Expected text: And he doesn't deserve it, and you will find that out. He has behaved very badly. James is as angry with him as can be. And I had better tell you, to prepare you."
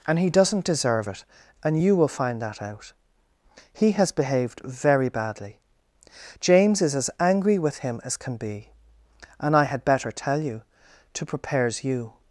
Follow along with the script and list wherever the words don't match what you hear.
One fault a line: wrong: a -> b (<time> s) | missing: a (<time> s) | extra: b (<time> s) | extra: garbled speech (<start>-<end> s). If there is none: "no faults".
wrong: prepare -> prepares (11.2 s)